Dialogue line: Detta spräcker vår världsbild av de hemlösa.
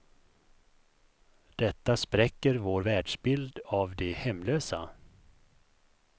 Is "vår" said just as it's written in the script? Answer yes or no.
yes